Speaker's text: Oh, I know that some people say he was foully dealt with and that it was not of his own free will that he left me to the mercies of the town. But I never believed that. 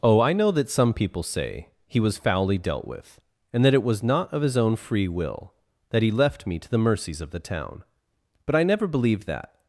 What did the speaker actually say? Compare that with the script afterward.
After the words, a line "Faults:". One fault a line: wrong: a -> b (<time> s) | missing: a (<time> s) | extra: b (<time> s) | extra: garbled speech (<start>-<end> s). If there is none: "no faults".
Oh, I know that some people say he was foully dealt with and that it was not of his own free will that he left me to the mercies of the town. But I never believed that.
Faults:
no faults